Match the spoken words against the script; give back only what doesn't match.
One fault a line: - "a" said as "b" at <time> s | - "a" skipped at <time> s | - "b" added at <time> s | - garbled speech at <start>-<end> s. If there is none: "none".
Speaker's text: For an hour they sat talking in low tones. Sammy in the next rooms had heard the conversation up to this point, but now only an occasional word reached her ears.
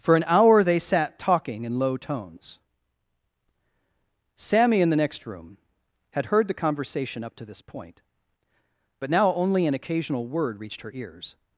- "rooms" said as "room" at 5.3 s